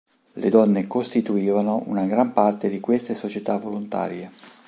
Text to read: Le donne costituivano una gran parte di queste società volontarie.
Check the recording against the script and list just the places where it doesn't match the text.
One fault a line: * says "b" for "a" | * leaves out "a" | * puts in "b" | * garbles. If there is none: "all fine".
all fine